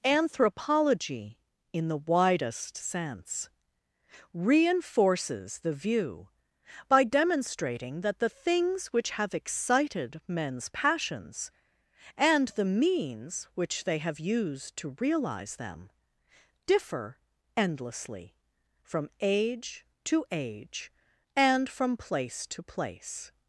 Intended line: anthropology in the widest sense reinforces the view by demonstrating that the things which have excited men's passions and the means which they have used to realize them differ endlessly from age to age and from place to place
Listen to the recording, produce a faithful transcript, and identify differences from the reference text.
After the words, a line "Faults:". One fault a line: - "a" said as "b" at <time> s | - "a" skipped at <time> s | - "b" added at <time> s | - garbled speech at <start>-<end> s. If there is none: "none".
anthropology in the widest sense reinforces the view by demonstrating that the things which have excited men's passions and the means which they have used to realize them differ endlessly from age to age and from place to place
Faults:
none